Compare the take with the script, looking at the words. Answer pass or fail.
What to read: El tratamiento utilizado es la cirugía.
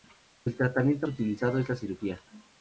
pass